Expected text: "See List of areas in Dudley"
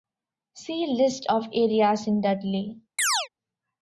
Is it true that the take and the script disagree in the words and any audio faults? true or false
true